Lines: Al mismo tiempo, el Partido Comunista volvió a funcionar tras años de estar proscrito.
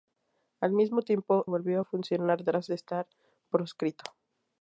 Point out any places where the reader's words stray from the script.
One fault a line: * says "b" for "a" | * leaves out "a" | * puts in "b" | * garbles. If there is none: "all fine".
* leaves out "el Partido Comunista"
* leaves out "años"